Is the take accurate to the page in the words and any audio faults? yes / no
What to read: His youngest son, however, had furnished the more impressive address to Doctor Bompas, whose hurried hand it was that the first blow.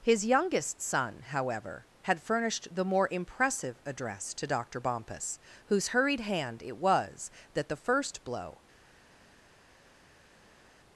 yes